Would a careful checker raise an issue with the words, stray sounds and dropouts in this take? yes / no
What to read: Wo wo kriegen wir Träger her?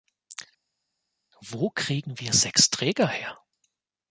yes